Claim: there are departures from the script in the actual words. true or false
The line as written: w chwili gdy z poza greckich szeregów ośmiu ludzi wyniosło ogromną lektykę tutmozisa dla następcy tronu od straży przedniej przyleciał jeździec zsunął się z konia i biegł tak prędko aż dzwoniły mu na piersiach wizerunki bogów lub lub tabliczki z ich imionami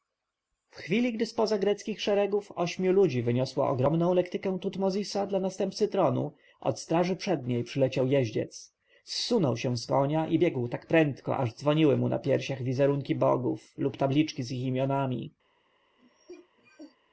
true